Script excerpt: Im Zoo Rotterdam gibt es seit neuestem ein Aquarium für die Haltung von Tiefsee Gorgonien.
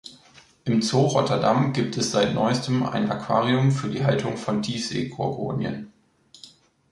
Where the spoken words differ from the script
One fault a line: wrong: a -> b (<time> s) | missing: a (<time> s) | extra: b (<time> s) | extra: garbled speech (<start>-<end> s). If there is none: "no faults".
no faults